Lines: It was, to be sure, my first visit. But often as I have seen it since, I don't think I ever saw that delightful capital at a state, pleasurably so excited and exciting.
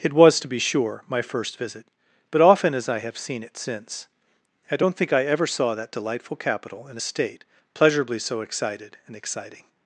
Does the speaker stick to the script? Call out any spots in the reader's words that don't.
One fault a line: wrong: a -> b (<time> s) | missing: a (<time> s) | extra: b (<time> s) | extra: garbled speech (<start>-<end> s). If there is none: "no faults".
wrong: at -> in (6.9 s)